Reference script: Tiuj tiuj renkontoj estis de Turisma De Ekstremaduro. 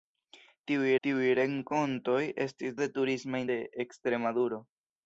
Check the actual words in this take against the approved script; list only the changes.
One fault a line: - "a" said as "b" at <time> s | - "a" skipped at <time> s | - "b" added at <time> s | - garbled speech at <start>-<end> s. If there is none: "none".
none